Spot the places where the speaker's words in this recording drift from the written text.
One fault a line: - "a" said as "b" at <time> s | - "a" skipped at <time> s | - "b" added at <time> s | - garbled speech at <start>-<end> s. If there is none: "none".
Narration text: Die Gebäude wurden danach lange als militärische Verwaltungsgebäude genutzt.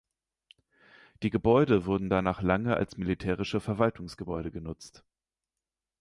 none